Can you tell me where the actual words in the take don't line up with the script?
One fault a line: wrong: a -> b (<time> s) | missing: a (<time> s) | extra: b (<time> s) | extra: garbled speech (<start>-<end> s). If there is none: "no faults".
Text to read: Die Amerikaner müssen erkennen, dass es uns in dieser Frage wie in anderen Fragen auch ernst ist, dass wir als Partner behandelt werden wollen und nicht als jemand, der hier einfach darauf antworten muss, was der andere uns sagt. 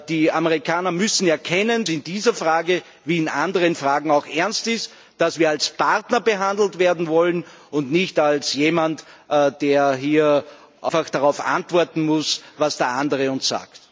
missing: dass es uns (1.9 s)